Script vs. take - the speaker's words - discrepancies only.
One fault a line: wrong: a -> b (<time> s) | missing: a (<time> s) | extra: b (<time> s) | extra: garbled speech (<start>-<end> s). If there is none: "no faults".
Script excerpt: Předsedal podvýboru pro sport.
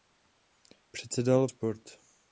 missing: podvýboru pro (1.5 s)